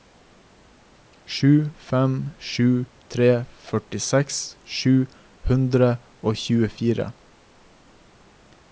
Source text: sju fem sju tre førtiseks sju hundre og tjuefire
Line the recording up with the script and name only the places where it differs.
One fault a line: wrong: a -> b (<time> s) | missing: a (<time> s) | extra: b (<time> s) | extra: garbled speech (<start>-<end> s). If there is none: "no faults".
no faults